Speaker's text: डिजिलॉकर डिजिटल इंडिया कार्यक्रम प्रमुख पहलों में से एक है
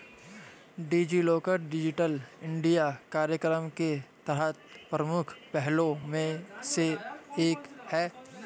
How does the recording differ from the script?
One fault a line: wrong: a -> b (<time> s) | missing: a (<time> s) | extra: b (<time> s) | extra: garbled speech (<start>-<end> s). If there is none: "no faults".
extra: के तहत (3.8 s)